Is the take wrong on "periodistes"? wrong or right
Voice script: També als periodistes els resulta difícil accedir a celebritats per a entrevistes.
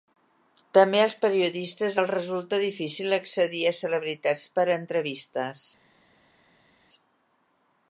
right